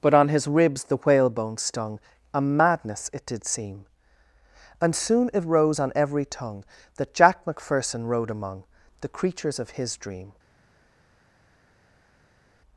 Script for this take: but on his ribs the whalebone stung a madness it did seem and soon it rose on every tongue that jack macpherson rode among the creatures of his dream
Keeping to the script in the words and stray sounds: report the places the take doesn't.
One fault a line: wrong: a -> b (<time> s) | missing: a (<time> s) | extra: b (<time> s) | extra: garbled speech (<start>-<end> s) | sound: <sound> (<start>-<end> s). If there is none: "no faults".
no faults